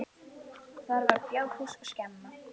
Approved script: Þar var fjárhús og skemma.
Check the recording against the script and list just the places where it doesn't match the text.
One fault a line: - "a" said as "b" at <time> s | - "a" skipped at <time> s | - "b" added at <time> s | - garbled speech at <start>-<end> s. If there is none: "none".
none